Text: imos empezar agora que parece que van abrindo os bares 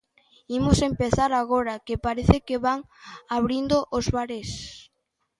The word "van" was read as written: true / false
true